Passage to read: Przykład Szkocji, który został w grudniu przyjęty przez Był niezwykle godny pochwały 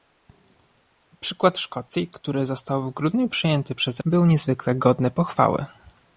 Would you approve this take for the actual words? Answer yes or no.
yes